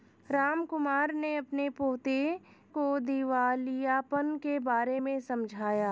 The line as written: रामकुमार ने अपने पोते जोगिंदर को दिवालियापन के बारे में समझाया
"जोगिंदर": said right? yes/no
no